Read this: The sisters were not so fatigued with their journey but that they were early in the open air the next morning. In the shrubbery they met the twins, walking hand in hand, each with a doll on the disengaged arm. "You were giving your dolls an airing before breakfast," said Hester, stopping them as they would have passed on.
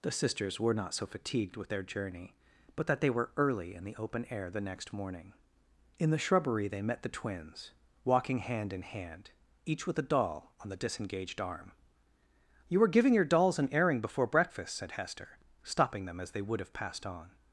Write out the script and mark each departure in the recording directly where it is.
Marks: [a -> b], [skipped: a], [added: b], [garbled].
The sisters were not so fatigued with their journey but that they were early in the open air the next morning. In the shrubbery they met the twins, walking hand in hand, each with a doll on the disengaged arm. "You were giving your dolls an airing before breakfast," said Hester, stopping them as they would have passed on.